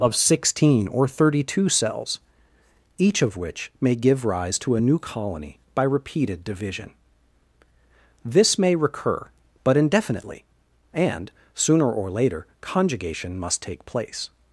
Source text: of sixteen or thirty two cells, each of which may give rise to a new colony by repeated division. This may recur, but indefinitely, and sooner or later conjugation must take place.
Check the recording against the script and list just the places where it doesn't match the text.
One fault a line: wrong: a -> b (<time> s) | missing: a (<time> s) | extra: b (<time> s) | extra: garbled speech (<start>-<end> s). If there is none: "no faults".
no faults